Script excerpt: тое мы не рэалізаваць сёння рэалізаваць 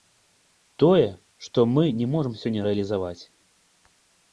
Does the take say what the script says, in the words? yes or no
no